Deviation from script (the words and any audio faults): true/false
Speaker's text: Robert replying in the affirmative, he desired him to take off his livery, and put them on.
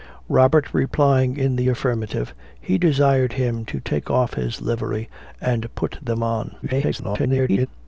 true